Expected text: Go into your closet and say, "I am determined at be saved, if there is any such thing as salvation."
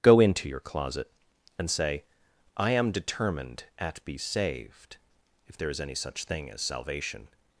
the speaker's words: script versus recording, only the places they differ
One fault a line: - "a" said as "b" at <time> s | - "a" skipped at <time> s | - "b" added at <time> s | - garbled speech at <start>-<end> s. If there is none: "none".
none